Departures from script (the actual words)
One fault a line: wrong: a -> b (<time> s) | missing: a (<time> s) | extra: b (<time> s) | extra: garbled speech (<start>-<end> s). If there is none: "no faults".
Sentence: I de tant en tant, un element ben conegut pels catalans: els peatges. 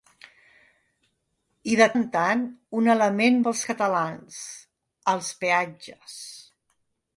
missing: tant (1.9 s)
missing: ben conegut (3.4 s)